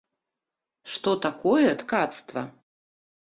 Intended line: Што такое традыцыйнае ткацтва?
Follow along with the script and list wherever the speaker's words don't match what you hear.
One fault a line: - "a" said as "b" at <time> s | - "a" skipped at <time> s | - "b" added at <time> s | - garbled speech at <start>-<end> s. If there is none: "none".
- "традыцыйнае" skipped at 1.7 s